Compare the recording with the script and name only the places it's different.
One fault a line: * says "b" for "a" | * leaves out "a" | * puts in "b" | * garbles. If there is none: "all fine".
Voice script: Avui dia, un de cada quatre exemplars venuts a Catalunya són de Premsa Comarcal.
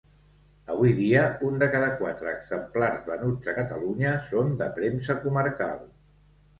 all fine